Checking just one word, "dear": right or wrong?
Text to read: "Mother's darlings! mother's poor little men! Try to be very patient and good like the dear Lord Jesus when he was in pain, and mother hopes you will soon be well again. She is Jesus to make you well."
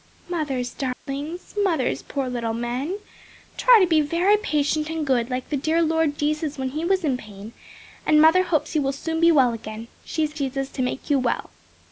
right